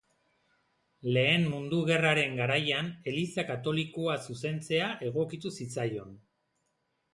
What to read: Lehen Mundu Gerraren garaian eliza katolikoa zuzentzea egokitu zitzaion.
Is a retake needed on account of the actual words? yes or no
no